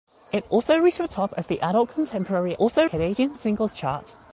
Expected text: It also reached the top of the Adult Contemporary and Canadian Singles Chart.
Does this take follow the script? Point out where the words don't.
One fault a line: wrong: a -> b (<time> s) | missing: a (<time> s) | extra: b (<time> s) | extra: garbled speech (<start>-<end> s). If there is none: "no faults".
wrong: and -> also (2.6 s)